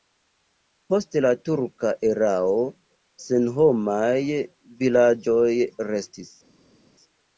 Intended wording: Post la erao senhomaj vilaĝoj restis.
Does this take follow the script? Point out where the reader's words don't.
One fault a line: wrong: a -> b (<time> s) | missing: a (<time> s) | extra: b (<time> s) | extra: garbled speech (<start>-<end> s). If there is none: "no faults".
extra: turka (1.5 s)